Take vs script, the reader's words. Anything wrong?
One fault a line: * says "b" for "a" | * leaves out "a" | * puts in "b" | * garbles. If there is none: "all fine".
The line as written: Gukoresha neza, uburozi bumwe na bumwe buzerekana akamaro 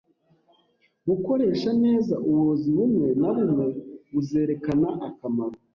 all fine